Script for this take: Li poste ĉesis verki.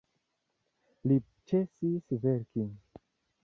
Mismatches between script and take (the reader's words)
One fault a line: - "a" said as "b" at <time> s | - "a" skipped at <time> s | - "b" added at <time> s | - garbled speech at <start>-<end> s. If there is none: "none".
- "poste" skipped at 1.2 s